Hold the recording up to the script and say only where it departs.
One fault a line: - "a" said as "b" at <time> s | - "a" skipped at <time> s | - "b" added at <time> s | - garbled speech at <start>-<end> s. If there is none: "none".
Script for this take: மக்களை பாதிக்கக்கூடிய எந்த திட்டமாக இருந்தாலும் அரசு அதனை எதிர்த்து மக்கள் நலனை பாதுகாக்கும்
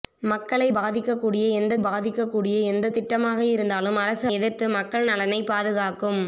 - "பாதிக்கக்கூடிய எந்த" added at 1.8 s
- "அதனை" skipped at 4.3 s